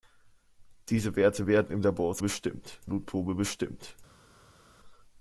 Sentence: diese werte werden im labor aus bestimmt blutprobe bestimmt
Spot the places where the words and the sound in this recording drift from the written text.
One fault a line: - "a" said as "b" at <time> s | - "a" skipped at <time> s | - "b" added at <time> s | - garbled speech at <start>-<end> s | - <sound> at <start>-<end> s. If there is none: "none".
none